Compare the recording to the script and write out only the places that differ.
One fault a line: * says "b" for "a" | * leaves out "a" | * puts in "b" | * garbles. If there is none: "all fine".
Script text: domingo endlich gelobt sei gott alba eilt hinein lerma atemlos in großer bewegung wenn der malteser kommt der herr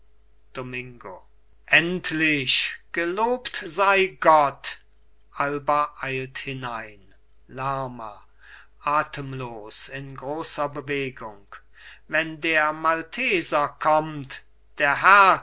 all fine